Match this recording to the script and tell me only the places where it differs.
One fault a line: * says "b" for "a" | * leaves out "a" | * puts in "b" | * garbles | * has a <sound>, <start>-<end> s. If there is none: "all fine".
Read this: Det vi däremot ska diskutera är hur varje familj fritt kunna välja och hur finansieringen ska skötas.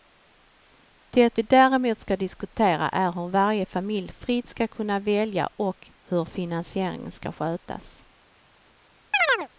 * puts in "ska"
* has a chirp, 9.1-9.5 s